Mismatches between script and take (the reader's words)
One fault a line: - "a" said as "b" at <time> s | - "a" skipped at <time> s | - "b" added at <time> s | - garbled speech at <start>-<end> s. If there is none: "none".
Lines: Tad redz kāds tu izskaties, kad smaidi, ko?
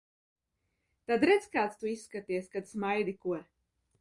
none